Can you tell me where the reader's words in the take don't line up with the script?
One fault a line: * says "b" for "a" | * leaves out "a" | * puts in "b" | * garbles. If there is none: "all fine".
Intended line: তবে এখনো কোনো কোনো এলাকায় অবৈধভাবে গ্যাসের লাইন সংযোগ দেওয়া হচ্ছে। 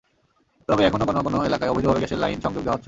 all fine